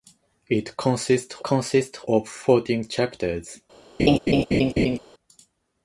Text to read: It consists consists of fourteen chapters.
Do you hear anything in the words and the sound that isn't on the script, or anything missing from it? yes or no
yes